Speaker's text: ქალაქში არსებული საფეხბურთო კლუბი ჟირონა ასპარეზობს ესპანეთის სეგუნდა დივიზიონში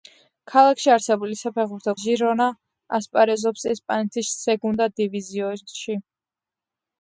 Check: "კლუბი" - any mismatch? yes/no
yes